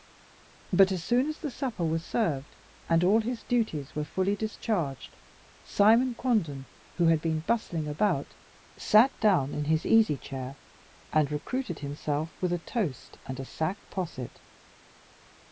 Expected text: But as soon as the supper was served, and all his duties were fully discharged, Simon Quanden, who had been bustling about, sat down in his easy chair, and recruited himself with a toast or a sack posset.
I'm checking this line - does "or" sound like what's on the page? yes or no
no